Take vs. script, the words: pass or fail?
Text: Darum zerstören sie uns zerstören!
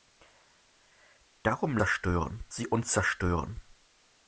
pass